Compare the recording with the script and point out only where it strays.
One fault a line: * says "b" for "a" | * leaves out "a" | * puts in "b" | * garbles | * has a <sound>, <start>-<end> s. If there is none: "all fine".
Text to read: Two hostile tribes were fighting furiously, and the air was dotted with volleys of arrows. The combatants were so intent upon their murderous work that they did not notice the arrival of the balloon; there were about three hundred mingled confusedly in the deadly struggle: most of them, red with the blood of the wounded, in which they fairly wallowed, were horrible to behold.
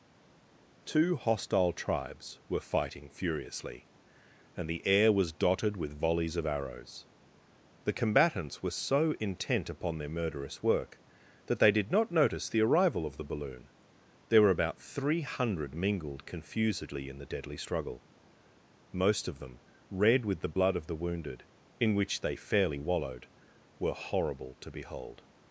all fine